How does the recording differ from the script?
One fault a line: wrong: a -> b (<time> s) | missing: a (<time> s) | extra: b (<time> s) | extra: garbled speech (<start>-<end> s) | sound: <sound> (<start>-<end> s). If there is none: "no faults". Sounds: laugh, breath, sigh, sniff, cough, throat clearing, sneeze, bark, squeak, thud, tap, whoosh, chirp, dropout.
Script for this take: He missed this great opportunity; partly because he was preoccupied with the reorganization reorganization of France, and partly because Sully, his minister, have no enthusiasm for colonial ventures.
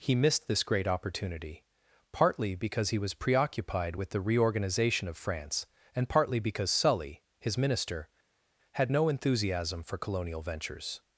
missing: reorganization (5.1 s)
wrong: have -> had (8.7 s)